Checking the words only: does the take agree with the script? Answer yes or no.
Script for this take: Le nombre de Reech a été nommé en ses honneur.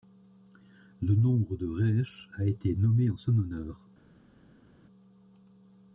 no